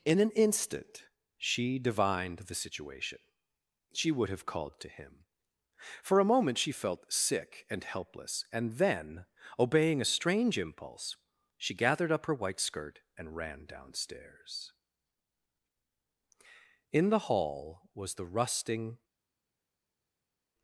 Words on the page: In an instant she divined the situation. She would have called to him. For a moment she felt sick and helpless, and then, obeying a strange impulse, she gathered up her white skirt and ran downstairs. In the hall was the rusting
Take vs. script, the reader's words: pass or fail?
pass